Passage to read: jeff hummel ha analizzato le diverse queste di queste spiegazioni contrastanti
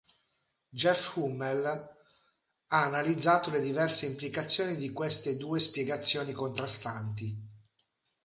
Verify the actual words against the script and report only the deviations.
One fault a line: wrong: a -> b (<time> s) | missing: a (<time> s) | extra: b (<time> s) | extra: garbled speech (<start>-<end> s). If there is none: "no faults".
wrong: queste -> implicazioni (4.1 s)
extra: due (5.4 s)